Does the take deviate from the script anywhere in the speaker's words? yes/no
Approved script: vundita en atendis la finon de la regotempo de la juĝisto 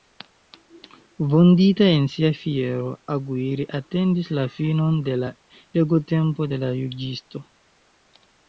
yes